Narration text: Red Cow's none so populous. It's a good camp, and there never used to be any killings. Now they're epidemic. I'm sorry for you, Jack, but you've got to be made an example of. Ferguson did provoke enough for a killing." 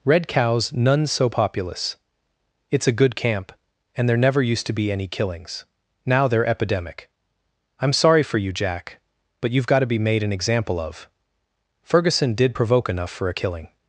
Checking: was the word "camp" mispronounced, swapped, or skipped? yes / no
no